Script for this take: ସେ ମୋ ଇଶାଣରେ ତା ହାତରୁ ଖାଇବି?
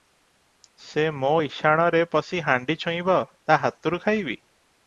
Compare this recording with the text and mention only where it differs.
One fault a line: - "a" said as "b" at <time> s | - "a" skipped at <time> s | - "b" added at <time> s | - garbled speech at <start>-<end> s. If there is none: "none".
- "ପଶି ହାଣ୍ଡି ଛୁଇଁବ" added at 2.1 s